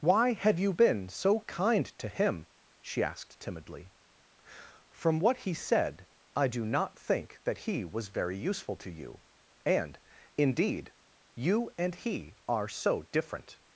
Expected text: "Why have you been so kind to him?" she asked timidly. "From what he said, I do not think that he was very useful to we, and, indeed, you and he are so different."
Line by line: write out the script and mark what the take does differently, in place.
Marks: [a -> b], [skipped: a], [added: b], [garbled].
"Why have you been so kind to him?" she asked timidly. "From what he said, I do not think that he was very useful to [we, -> you] and, indeed, you and he are so different."